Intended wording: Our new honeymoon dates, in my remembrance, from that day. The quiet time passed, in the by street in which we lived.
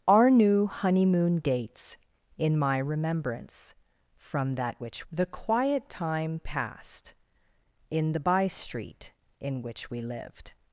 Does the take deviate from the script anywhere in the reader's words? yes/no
yes